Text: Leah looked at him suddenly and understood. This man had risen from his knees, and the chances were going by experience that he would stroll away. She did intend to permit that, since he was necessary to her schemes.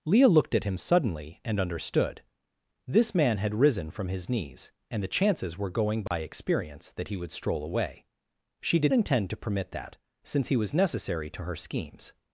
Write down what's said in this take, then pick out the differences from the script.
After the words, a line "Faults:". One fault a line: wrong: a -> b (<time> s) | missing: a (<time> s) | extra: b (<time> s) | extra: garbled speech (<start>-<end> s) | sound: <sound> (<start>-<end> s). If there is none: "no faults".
Leah looked at him suddenly and understood. This man had risen from his knees, and the chances were going by experience that he would stroll away. She did intend to permit that, since he was necessary to her schemes.
Faults:
sound: dropout (6.1-6.1 s)